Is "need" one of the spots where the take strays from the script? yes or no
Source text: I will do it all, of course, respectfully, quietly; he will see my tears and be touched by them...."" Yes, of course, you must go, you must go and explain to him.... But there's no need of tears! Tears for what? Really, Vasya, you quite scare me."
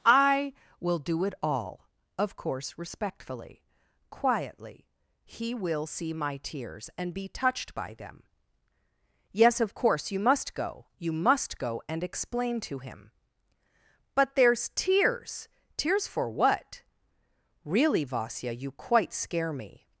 yes